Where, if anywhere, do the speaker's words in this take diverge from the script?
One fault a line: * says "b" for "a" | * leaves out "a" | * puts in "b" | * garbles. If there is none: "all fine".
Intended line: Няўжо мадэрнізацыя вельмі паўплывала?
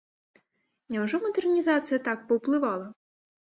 * says "так" for "вельмі"